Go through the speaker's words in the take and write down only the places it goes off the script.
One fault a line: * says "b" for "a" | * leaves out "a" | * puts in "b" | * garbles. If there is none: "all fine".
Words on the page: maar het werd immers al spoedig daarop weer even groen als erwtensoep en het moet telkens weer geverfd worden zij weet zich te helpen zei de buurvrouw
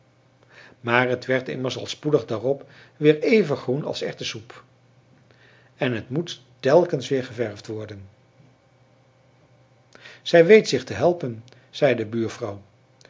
all fine